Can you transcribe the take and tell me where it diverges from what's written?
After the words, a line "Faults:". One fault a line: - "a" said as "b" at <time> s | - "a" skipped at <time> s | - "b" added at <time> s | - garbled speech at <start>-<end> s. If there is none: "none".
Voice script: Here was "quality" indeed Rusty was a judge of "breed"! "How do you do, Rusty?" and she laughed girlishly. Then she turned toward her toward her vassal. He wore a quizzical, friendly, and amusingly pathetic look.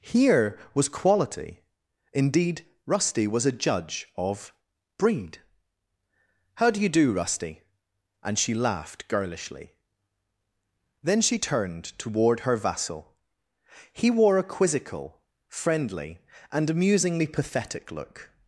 Here was "quality" indeed Rusty was a judge of "breed"! "How do you do, Rusty?" and she laughed girlishly. Then she turned toward her vassal. He wore a quizzical, friendly, and amusingly pathetic look.
Faults:
- "toward her" skipped at 12.6 s